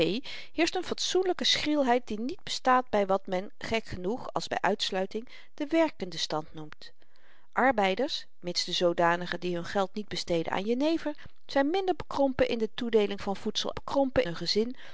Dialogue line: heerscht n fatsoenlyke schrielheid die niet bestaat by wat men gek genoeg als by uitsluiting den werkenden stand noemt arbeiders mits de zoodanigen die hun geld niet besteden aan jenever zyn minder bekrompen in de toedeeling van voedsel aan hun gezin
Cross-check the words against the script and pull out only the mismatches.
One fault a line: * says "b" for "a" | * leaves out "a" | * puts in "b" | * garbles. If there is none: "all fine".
* says "bekrompen" for "aan"